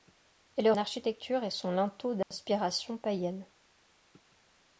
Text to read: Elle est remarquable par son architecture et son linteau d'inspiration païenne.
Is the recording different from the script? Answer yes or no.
yes